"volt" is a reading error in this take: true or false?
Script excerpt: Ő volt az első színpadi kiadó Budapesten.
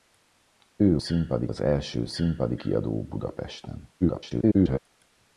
true